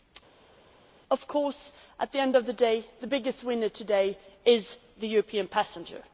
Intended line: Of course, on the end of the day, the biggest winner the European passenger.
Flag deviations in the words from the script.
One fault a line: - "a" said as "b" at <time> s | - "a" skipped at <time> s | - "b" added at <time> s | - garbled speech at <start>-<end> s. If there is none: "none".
- "on" said as "at" at 2.0 s
- "today is" added at 3.7 s